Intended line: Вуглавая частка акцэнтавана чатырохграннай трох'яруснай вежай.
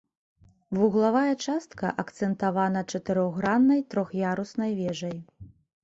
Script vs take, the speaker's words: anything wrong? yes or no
no